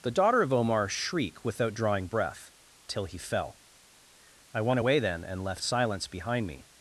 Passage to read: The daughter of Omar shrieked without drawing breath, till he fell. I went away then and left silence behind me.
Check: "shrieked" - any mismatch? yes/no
yes